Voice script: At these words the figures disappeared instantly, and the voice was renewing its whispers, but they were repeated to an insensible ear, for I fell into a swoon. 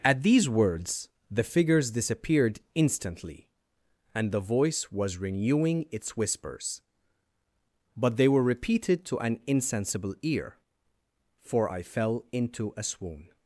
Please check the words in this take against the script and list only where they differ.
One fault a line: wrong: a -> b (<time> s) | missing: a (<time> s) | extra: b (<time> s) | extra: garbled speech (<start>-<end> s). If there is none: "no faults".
no faults